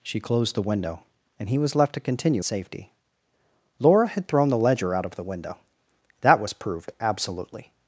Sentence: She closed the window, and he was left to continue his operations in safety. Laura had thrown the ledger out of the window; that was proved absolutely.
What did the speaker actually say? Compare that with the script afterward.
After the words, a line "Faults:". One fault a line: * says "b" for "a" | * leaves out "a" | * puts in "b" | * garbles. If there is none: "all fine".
She closed the window, and he was left to continue safety. Laura had thrown the ledger out of the window; that was proved absolutely.
Faults:
* leaves out "his operations in"